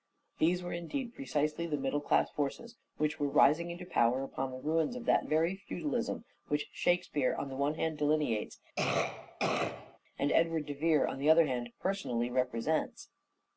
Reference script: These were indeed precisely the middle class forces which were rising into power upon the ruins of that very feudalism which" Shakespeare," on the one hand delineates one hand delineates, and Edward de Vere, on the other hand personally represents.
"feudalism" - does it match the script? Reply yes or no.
yes